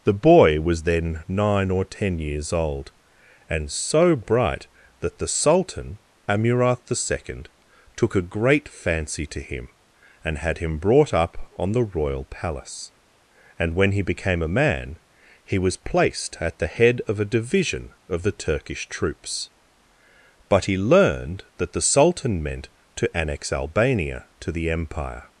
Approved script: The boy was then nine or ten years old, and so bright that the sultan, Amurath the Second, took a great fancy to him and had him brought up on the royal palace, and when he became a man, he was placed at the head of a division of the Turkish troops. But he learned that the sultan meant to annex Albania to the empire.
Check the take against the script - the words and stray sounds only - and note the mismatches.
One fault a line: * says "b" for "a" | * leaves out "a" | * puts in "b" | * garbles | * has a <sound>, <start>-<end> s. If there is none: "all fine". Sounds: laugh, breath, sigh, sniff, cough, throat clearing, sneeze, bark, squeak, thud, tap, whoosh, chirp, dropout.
all fine